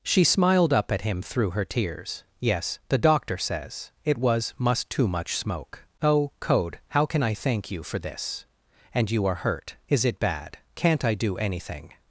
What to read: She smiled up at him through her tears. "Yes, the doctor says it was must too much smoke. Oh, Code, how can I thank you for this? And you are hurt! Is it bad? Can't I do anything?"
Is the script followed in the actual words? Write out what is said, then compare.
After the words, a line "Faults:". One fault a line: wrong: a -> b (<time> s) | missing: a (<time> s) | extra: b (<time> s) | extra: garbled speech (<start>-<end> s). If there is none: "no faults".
She smiled up at him through her tears. "Yes, the doctor says it was must too much smoke. Oh, Code, how can I thank you for this? And you are hurt! Is it bad? Can't I do anything?"
Faults:
no faults